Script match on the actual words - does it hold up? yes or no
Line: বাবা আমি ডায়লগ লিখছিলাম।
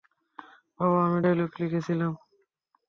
yes